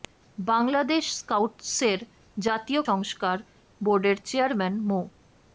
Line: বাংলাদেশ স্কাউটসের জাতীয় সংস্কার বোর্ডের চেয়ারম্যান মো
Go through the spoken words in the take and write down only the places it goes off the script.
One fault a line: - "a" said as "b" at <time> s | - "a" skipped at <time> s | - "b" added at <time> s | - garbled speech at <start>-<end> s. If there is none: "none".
none